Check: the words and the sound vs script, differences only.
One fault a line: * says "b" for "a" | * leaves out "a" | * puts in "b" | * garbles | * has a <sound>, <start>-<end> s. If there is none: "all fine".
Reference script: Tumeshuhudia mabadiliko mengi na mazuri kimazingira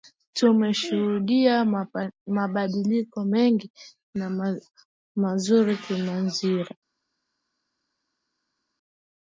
all fine